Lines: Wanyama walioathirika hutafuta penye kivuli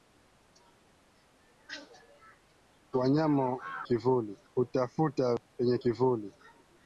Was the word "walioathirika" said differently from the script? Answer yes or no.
yes